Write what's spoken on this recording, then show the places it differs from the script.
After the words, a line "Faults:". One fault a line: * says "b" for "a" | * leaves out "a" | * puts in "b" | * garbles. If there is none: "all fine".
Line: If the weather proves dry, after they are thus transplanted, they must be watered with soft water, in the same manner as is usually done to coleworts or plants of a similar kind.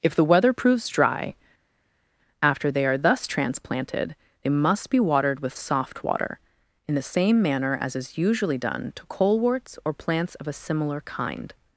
If the weather proves dry, after they are thus transplanted, they must be watered with soft water, in the same manner as is usually done to coleworts or plants of a similar kind.
Faults:
all fine